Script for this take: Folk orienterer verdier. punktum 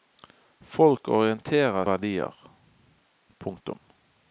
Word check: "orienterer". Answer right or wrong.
right